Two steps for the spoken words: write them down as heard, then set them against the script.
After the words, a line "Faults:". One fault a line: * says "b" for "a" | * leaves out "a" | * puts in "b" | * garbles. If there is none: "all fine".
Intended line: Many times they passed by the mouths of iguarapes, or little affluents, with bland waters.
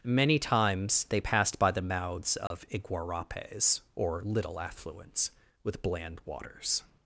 Many times they passed by the mouths of iguarapes, or little affluents, with bland waters.
Faults:
all fine